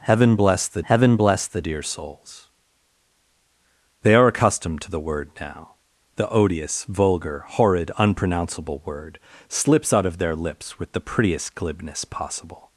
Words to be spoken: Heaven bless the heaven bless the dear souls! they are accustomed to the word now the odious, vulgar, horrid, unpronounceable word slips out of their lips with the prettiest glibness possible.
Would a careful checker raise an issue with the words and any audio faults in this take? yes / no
no